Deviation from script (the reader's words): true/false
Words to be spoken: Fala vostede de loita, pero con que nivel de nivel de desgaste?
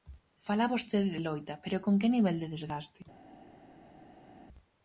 true